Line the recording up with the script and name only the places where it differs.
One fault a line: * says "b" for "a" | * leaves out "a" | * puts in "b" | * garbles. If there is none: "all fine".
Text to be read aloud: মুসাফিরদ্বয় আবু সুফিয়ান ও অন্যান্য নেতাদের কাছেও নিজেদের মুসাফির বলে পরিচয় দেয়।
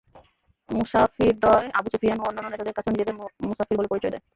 all fine